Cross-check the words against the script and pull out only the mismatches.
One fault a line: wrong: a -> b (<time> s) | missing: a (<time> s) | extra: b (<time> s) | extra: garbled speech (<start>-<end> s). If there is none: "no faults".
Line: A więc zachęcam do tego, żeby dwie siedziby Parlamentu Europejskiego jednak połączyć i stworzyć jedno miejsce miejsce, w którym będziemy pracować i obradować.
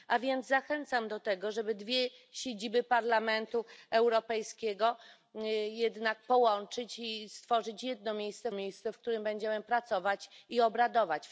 no faults